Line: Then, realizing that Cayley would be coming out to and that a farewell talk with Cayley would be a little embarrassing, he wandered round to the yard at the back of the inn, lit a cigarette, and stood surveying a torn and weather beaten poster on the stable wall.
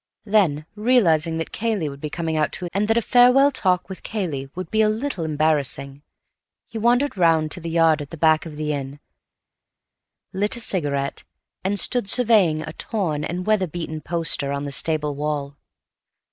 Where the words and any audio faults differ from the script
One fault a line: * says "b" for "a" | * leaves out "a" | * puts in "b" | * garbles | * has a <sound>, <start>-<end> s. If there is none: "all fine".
all fine